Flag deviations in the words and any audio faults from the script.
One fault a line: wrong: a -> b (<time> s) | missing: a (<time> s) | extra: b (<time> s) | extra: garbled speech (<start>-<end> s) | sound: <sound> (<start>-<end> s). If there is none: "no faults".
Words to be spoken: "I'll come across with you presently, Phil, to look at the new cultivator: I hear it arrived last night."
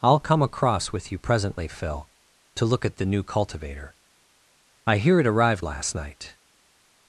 no faults